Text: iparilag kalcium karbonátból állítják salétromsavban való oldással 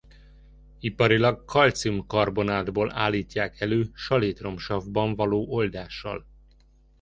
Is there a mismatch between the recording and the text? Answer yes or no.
yes